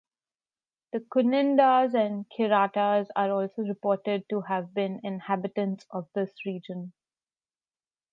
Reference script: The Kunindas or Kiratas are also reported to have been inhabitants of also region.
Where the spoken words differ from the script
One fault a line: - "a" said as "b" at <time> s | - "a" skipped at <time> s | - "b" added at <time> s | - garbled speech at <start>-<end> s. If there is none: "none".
- "or" said as "and" at 1.9 s
- "also" said as "this" at 6.2 s